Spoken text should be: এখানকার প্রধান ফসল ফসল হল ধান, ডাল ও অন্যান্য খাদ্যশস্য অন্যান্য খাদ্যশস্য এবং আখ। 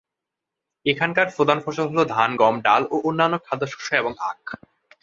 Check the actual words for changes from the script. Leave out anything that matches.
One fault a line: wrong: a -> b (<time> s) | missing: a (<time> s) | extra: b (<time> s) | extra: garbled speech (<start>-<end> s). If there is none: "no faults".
missing: ফসল (1.9 s)
extra: গম (2.3 s)
missing: অন্যান্য খাদ্যশস্য (3.9 s)